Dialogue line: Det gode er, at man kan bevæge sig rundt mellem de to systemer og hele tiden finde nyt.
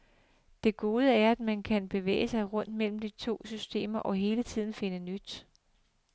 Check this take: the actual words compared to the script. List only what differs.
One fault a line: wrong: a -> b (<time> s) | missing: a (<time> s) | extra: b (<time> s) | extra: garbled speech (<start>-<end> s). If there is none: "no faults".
no faults